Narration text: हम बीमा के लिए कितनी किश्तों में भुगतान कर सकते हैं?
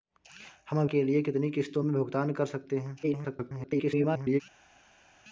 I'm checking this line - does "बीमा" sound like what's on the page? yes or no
no